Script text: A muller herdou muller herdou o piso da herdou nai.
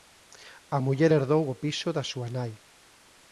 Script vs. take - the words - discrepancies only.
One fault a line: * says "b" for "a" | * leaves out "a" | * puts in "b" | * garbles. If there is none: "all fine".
* leaves out "muller herdou"
* says "súa" for "herdou"